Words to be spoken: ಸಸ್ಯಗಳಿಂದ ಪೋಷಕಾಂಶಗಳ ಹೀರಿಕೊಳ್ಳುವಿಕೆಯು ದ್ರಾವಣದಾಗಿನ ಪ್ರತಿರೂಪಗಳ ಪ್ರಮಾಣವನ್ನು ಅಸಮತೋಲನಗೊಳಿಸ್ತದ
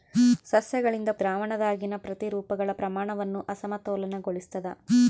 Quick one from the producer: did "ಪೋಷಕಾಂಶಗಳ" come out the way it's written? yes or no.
no